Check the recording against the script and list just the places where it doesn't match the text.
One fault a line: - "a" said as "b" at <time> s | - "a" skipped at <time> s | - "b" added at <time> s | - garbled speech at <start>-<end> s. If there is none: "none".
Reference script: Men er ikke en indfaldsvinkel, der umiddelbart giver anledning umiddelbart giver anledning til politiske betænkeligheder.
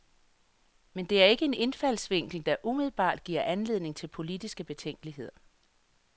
- "det" added at 1.1 s
- "umiddelbart giver anledning" skipped at 4.0 s